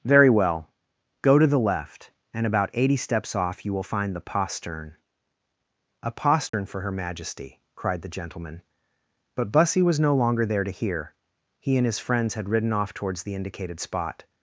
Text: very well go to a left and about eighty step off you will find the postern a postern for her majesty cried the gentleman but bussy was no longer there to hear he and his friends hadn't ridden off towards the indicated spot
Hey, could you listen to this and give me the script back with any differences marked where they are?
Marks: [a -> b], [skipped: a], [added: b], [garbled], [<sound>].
very well go to [a -> the] left and about eighty [step -> steps] off you will find the postern a postern [dropout] for her majesty cried the gentleman but bussy was no longer there to hear he and his friends [hadn't -> had] ridden off towards the indicated spot